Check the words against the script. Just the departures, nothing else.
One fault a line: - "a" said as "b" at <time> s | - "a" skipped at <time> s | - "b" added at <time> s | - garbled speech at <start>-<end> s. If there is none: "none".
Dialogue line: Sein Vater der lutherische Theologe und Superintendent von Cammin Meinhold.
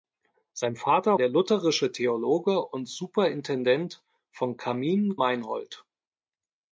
none